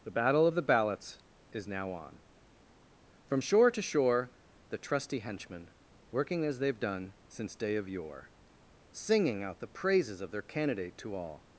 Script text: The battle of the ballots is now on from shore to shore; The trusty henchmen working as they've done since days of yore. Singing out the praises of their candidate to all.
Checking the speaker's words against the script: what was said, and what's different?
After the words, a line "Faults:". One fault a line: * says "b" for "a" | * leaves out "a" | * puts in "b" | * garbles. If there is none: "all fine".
The battle of the ballots is now on from shore to shore; The trusty henchmen working as they've done since day of yore. Singing out the praises of their candidate to all.
Faults:
* says "day" for "days"